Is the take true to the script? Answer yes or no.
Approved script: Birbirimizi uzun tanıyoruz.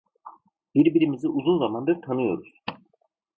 no